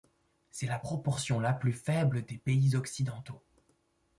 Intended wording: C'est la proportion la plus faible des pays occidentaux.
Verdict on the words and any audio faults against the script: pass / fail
pass